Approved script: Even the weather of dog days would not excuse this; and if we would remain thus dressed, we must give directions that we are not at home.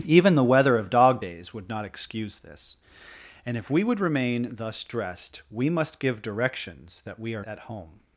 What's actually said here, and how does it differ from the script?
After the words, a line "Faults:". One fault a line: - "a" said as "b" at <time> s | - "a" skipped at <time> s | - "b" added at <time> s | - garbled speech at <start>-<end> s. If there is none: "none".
Even the weather of dog days would not excuse this; and if we would remain thus dressed, we must give directions that we are at home.
Faults:
- "not" skipped at 7.4 s